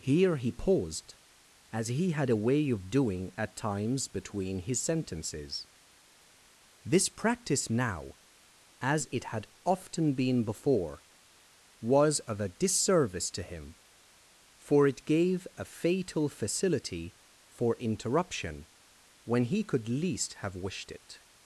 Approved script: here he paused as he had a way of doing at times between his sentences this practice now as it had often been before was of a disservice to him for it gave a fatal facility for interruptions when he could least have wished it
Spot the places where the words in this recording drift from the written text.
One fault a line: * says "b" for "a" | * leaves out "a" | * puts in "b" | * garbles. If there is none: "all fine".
* says "interruption" for "interruptions"